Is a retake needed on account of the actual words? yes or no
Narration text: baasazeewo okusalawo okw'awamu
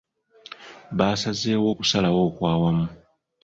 no